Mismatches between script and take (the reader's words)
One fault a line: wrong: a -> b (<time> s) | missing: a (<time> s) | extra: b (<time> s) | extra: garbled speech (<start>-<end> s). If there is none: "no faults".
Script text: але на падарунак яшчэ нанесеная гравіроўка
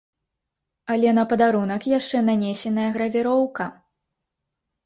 no faults